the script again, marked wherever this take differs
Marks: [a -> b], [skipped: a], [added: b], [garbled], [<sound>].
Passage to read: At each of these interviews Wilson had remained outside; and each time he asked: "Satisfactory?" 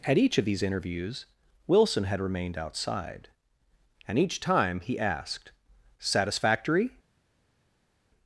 At each of these interviews Wilson had remained outside; and each time he asked: "Satisfactory?"